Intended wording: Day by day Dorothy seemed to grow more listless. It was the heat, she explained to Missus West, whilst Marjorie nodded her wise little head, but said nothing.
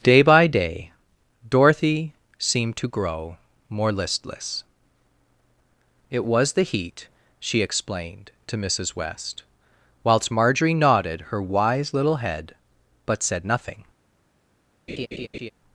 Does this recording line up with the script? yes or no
yes